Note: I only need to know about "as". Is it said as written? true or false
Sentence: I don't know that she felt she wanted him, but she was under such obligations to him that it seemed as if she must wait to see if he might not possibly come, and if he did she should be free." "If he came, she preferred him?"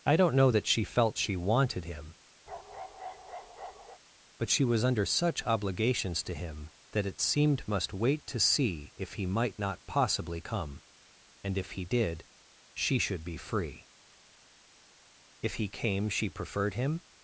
false